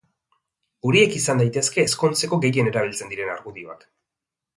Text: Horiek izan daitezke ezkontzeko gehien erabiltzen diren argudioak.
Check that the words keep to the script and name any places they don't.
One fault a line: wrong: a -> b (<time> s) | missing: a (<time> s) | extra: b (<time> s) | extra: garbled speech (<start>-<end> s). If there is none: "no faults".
no faults